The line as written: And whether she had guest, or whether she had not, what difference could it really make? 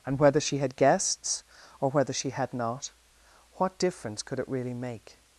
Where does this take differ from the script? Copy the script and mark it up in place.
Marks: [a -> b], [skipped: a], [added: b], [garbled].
And whether she had [guest, -> guests] or whether she had not, what difference could it really make?